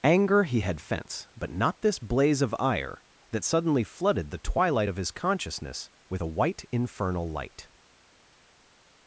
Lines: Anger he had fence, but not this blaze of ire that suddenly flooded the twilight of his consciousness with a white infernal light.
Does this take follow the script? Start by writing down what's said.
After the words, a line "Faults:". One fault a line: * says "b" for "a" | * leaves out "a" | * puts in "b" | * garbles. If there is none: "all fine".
Anger he had fence, but not this blaze of ire that suddenly flooded the twilight of his consciousness with a white infernal light.
Faults:
all fine